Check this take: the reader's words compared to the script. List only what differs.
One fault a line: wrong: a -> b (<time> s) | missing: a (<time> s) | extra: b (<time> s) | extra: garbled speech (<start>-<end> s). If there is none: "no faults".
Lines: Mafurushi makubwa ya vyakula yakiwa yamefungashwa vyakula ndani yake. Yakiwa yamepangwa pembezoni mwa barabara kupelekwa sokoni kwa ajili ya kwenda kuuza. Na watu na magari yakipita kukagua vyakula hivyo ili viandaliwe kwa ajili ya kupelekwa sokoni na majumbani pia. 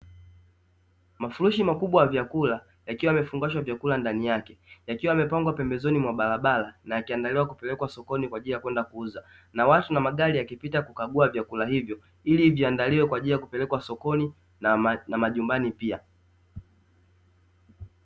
extra: na yakiandaliwa (6.8 s)